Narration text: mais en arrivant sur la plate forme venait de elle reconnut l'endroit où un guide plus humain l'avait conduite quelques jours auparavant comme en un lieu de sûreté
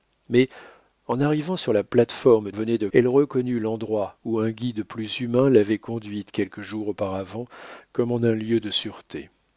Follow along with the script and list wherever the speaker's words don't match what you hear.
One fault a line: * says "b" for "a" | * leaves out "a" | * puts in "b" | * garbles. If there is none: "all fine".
all fine